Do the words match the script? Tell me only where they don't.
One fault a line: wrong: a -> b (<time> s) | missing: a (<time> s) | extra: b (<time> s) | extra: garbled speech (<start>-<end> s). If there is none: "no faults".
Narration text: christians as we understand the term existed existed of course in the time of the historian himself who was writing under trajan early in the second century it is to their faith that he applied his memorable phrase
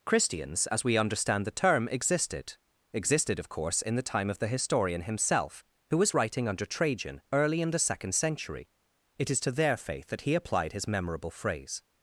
no faults